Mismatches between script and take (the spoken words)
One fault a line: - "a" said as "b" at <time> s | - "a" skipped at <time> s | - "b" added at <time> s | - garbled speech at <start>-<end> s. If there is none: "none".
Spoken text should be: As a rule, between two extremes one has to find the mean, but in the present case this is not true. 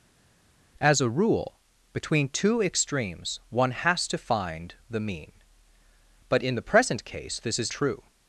- "not" skipped at 7.7 s